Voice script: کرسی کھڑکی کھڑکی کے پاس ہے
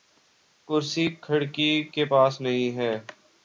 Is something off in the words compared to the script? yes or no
yes